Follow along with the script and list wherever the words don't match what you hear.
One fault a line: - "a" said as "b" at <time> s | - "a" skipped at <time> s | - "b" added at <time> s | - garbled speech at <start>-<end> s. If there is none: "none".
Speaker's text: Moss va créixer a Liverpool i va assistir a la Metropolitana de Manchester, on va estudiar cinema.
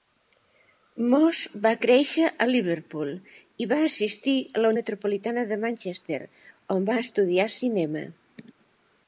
none